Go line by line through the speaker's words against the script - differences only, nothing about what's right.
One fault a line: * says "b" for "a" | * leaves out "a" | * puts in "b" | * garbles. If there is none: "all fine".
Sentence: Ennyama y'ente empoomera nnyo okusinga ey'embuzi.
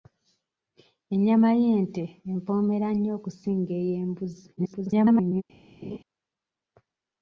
* garbles